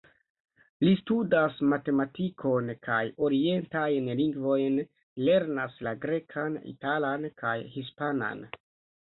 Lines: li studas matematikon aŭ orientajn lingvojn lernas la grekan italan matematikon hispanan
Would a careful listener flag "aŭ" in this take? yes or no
yes